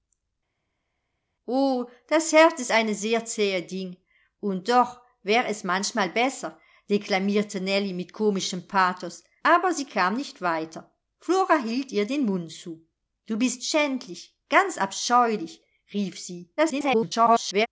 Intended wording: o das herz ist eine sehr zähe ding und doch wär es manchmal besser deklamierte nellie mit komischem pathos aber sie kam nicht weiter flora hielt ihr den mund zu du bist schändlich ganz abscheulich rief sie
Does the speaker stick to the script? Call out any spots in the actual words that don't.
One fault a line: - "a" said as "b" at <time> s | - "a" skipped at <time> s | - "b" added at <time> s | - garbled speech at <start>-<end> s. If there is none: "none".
- garbled speech at 16.6-17.7 s